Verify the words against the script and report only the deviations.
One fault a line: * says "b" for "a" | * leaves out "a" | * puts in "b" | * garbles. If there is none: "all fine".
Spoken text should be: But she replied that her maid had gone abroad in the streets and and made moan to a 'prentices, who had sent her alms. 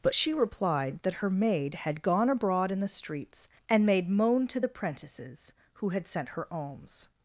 * leaves out "and"
* says "the" for "a"